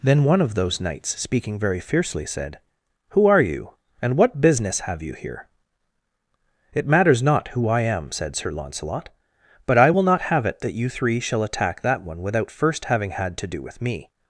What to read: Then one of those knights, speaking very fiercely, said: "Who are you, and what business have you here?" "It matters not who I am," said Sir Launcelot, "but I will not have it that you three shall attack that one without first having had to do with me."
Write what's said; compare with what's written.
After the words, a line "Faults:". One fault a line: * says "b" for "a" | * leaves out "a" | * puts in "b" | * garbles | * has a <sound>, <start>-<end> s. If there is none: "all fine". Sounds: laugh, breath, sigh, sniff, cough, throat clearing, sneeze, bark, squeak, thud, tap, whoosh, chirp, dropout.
Then one of those knights, speaking very fiercely, said: "Who are you, and what business have you here?" "It matters not who I am," said Sir Launcelot, "but I will not have it that you three shall attack that one without first having had to do with me."
Faults:
all fine